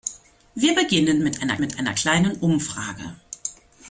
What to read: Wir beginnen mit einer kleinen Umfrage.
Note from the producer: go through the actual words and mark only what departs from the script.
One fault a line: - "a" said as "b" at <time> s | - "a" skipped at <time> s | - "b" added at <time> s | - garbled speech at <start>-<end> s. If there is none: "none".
- "mit einer" added at 1.6 s